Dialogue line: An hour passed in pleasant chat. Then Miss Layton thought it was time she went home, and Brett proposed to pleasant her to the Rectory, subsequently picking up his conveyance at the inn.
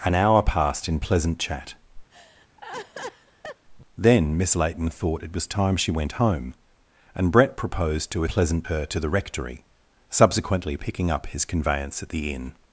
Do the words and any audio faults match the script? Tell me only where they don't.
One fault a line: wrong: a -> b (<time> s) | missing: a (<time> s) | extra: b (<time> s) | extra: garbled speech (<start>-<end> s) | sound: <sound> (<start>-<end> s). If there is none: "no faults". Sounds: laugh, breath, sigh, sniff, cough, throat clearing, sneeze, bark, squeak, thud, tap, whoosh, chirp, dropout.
sound: laugh (2.1-3.7 s)